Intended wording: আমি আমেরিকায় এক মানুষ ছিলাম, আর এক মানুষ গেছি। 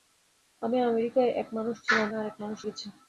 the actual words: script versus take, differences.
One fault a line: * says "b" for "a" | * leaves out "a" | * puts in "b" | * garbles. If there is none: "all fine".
all fine